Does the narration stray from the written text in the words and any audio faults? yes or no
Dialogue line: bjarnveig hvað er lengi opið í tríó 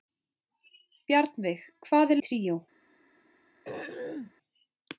yes